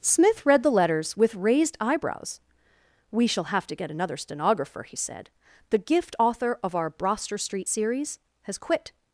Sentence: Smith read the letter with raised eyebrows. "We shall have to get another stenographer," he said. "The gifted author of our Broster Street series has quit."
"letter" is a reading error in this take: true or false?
true